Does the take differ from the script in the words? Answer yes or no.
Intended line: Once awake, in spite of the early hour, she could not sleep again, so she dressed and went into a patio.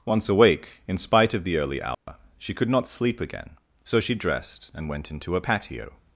no